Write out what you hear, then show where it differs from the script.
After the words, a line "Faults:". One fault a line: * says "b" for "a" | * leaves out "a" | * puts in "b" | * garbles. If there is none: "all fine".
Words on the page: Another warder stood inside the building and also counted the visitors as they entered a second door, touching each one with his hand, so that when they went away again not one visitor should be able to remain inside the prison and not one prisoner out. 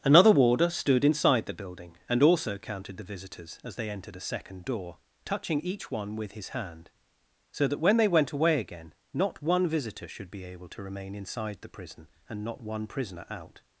Another warder stood inside the building and also counted the visitors as they entered a second door, touching each one with his hand, so that when they went away again not one visitor should be able to remain inside the prison and not one prisoner out.
Faults:
all fine